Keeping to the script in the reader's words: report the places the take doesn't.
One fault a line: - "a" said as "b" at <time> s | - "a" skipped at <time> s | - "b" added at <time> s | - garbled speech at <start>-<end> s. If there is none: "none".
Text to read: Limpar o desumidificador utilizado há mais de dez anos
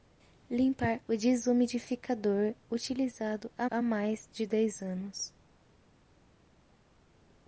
- "há" added at 3.7 s